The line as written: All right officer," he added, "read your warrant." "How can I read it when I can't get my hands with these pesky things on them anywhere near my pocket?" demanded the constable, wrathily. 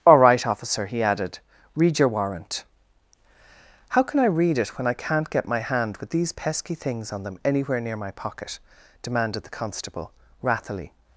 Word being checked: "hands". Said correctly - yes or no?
no